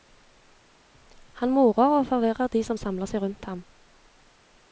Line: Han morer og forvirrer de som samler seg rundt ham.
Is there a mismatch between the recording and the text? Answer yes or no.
no